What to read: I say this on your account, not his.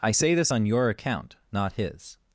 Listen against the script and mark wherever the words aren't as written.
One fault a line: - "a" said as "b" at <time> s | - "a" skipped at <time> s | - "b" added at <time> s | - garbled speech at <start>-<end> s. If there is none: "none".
none